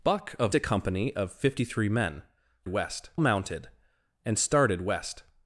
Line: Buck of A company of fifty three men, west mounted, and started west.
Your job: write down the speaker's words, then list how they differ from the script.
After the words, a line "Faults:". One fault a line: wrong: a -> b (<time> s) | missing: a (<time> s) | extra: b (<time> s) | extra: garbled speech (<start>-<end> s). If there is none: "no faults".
Buck of A company of fifty three men, west mounted, and started west.
Faults:
no faults